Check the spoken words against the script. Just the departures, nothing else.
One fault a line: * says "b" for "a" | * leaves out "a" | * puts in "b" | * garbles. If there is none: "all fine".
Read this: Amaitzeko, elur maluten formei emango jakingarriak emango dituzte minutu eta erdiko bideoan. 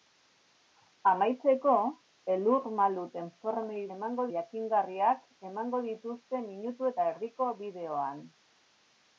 all fine